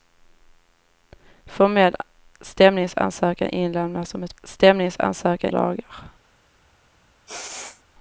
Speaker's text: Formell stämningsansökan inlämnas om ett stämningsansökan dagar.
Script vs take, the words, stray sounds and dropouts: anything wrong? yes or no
yes